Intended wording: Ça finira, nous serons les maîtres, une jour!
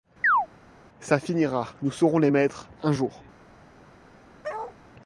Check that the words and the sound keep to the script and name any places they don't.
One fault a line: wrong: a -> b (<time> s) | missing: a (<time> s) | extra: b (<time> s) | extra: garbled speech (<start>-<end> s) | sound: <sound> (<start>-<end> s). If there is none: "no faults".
sound: chirp (0.2-0.5 s)
wrong: une -> un (2.8 s)
sound: bark (4.4-4.8 s)